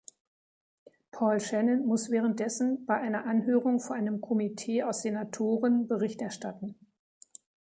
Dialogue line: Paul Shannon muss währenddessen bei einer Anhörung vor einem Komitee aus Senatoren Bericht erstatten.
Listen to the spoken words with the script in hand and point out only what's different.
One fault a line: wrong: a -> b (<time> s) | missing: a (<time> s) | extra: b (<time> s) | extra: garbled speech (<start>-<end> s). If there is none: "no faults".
no faults